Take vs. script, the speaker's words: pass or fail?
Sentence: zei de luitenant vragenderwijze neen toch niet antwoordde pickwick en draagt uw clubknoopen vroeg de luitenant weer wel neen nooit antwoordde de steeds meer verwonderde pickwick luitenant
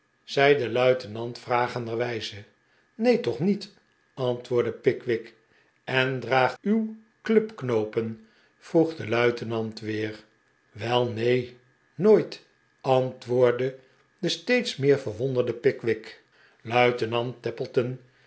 pass